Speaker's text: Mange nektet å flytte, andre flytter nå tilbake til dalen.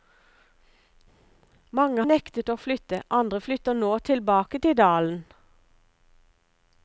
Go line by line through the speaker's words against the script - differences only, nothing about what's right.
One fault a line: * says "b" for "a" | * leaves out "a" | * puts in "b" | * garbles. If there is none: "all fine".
all fine